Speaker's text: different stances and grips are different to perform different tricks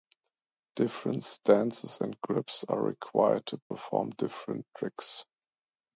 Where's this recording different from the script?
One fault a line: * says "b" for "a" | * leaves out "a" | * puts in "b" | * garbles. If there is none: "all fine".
* says "required" for "different"